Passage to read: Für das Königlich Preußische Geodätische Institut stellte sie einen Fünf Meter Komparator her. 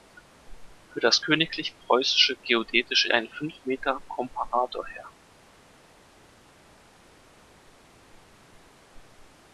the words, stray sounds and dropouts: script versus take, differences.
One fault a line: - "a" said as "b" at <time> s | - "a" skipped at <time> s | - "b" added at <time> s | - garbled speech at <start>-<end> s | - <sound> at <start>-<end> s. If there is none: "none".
- "Institut stellte sie" skipped at 3.1 s